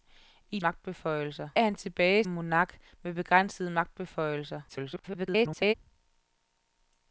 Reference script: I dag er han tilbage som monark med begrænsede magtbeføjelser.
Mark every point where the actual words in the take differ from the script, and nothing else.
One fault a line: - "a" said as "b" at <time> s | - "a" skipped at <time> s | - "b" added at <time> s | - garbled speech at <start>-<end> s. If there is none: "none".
- "dag" said as "magtbeføjelser" at 0.6 s
- "som" skipped at 2.2 s
- garbled speech at 4.7-5.7 s